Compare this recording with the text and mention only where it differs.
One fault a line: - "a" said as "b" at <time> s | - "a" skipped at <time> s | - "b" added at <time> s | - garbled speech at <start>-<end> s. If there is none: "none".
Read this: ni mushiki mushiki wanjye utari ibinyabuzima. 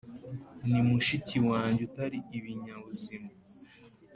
- "mushiki" skipped at 1.4 s